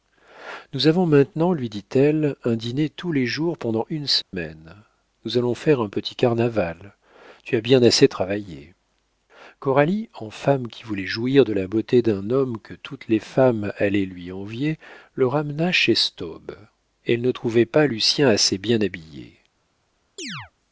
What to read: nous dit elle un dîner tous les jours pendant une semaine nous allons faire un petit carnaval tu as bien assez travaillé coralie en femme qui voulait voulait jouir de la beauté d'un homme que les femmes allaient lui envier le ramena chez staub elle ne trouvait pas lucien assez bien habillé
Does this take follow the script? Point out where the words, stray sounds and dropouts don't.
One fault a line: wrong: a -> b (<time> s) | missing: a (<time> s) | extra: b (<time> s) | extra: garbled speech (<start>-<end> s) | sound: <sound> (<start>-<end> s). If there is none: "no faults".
extra: avons maintenant lui (0.9 s)
sound: dropout (4.2-4.3 s)
missing: voulait (11.1 s)
extra: toutes (12.8 s)
sound: chirp (20.2-20.5 s)